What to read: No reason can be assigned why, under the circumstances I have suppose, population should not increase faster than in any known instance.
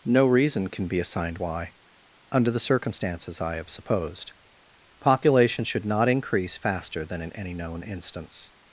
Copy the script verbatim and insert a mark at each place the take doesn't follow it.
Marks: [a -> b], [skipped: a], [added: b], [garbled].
No reason can be assigned why, under the circumstances I have [suppose, -> supposed] population should not increase faster than in any known instance.